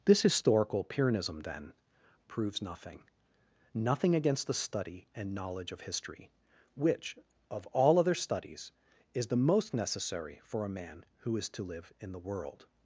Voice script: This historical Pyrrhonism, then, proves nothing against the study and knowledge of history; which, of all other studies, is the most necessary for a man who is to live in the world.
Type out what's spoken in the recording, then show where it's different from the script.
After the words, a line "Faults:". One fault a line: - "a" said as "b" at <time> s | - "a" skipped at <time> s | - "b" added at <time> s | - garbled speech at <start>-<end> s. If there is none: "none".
This historical Pyrrhonism, then, proves nothing nothing against the study and knowledge of history; which, of all other studies, is the most necessary for a man who is to live in the world.
Faults:
- "nothing" added at 3.7 s